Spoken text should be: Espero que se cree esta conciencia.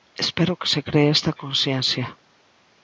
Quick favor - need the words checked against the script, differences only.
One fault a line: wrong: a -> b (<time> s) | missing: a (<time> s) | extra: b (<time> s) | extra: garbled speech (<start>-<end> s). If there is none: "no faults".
no faults